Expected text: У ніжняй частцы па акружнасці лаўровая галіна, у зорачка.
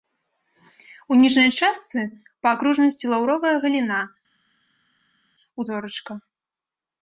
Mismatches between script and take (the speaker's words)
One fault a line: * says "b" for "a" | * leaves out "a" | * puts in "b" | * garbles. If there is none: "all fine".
all fine